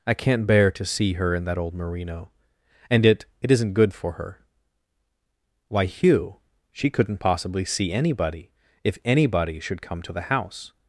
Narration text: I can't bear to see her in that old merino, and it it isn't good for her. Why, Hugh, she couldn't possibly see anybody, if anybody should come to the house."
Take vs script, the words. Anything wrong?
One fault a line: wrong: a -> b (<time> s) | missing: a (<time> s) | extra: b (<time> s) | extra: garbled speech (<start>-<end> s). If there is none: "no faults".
no faults